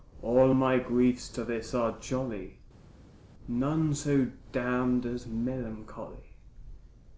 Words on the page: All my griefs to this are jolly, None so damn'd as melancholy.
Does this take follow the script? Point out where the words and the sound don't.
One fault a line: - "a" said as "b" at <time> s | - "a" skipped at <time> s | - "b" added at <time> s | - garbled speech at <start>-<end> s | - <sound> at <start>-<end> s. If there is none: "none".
none